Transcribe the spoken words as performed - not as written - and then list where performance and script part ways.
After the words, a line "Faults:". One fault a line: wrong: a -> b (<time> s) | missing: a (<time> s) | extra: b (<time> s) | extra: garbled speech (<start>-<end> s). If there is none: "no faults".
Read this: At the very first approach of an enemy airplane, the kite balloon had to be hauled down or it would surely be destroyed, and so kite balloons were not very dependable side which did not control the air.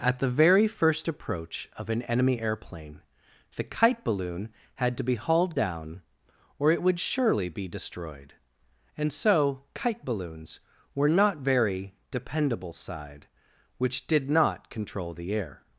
At the very first approach of an enemy airplane, the kite balloon had to be hauled down or it would surely be destroyed, and so kite balloons were not very dependable side which did not control the air.
Faults:
no faults